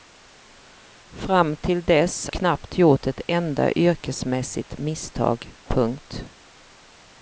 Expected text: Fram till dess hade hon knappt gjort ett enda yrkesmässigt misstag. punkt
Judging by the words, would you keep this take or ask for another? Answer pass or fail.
fail